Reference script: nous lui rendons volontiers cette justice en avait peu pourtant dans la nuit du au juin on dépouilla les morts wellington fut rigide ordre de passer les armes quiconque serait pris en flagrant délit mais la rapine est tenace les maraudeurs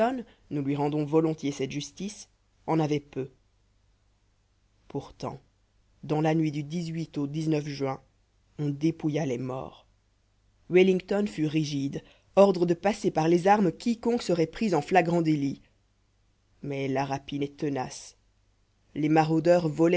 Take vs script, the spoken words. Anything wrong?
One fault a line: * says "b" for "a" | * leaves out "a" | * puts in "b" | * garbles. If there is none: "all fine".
* puts in "par"